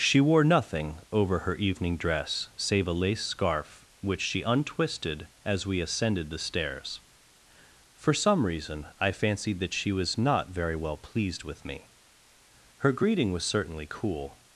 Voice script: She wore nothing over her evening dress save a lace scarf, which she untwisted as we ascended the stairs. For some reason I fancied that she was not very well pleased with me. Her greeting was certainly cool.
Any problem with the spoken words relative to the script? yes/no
no